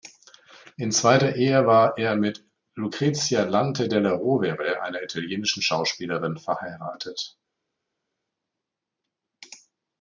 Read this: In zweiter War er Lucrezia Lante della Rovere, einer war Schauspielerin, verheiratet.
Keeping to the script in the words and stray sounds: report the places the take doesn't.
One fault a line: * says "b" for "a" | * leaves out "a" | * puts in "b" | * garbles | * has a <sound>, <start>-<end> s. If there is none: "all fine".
* puts in "Ehe"
* puts in "mit"
* says "italienischen" for "war"